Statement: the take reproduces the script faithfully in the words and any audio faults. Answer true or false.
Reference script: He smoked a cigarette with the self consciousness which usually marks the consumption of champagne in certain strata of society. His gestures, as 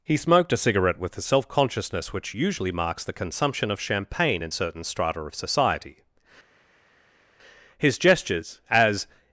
true